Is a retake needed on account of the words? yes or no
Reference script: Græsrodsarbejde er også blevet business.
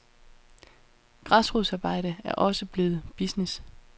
no